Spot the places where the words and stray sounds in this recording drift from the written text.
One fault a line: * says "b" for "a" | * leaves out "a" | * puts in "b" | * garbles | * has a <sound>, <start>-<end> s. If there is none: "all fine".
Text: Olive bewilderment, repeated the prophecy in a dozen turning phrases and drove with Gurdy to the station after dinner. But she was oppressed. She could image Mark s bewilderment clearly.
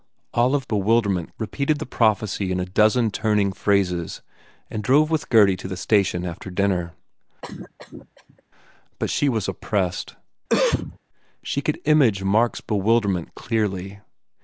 * has a cough, 7.4-8.4 s
* has a cough, 10.5-11.0 s